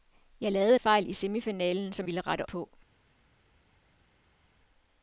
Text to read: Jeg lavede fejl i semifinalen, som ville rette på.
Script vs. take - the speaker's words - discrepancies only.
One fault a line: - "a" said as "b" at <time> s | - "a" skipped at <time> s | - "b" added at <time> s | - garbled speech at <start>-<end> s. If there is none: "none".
none